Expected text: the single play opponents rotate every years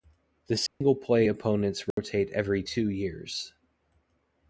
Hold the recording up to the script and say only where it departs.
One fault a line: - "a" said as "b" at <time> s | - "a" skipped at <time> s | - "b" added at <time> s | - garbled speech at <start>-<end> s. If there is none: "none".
- "two" added at 2.6 s